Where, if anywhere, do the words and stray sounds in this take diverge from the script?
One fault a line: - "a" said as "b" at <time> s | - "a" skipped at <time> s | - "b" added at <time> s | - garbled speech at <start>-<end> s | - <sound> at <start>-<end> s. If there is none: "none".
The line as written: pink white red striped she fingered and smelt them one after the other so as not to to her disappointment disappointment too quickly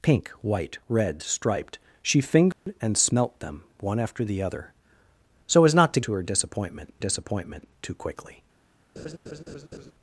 - dropout at 2.5-2.7 s
- laugh at 9.0-9.9 s